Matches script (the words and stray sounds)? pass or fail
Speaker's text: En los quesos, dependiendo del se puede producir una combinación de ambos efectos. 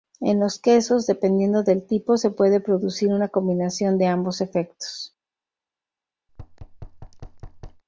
fail